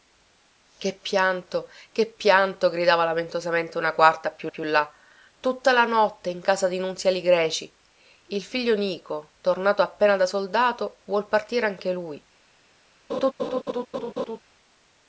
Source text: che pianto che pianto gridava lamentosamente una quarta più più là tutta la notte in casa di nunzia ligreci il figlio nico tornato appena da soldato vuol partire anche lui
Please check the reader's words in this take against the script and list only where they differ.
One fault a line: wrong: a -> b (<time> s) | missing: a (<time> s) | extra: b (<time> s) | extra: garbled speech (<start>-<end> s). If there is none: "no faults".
no faults